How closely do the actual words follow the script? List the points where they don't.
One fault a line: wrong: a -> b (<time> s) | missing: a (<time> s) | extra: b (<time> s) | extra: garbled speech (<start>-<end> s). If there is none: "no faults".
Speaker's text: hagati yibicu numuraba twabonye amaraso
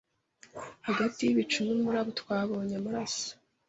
no faults